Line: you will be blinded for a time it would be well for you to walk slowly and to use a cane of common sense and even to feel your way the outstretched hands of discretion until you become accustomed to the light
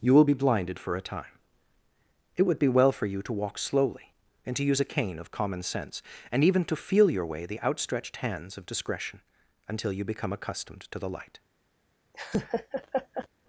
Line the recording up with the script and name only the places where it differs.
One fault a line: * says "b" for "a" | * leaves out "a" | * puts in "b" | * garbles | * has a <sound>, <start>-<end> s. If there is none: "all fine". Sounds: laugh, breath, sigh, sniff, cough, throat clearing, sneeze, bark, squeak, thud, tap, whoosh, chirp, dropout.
* has a laugh, 12.1-13.3 s